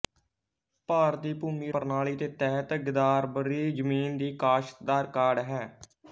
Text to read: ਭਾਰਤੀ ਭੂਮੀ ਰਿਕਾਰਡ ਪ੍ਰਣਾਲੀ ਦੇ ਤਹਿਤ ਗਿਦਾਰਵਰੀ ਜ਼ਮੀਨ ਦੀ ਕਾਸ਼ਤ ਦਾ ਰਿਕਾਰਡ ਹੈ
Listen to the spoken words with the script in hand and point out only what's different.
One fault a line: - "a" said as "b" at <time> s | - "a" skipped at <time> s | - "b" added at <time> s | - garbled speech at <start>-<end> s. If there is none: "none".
- "ਰਿਕਾਰਡ" skipped at 1.7 s